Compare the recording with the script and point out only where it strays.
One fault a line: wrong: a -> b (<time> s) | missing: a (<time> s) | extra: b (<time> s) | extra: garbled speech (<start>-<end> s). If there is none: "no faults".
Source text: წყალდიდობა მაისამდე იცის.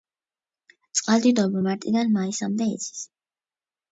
extra: მარტიდან (1.6 s)